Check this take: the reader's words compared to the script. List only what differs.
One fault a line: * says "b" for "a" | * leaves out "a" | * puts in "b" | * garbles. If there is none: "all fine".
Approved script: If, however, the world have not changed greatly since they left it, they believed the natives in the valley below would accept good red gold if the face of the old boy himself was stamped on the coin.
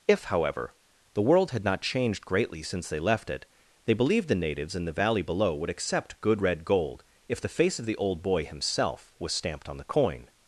* says "had" for "have"